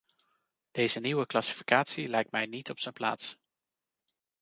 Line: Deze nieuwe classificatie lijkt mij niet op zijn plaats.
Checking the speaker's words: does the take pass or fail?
pass